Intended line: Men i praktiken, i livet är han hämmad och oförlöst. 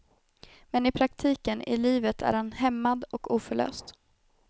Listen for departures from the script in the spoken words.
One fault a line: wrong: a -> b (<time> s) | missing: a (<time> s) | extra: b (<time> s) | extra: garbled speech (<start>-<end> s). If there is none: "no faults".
no faults